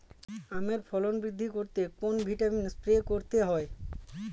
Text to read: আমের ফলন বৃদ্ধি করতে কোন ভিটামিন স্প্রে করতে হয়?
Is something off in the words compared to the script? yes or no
no